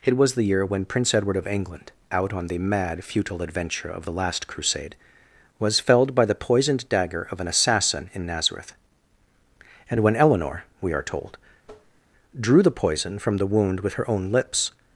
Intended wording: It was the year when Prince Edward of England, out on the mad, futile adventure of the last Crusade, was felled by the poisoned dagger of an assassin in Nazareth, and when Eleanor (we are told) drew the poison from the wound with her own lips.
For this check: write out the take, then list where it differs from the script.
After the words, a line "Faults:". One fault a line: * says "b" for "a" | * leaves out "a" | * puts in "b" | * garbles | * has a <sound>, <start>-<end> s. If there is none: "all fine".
It was the year when Prince Edward of England, out on the mad, futile adventure of the last Crusade, was felled by the poisoned dagger of an assassin in Nazareth, and when Eleanor (we are told) drew the poison from the wound with her own lips.
Faults:
* has a tap, 11.6-12.0 s